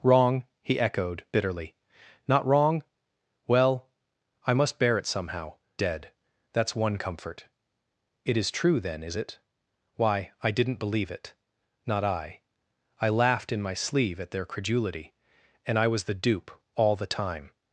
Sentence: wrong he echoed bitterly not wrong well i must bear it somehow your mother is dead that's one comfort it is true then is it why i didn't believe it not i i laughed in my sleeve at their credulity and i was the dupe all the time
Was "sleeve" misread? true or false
false